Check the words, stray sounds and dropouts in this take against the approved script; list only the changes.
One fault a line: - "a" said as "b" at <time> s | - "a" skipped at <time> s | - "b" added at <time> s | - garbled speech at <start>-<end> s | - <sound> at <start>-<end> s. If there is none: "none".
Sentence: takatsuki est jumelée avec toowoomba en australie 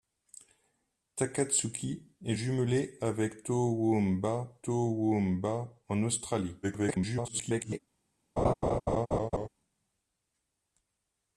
- "toowoomba" added at 4.6 s
- garbled speech at 6.6-7.8 s
- laugh at 8.4-9.5 s